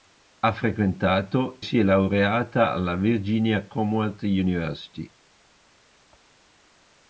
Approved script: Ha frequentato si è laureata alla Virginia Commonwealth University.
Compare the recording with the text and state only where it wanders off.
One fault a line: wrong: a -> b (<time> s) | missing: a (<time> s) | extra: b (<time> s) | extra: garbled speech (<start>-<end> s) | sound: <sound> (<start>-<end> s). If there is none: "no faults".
no faults